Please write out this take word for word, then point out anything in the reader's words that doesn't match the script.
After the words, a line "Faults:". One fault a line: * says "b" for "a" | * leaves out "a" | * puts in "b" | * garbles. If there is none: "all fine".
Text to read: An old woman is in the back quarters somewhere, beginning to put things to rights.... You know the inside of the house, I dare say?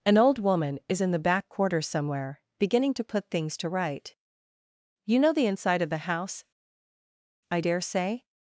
An old woman is in the back quarters somewhere, beginning to put things to right.... You know the inside of the house, I dare say?
Faults:
* says "right" for "rights"